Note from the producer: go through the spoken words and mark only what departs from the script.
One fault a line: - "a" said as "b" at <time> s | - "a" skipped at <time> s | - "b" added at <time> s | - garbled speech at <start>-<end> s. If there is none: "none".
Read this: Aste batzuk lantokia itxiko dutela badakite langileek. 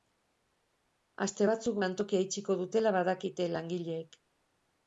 none